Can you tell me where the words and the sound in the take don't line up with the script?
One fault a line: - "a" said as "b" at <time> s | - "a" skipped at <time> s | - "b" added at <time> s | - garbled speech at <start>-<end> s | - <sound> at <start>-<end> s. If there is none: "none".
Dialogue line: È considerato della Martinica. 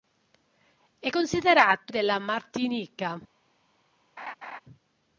- laugh at 4.2-4.6 s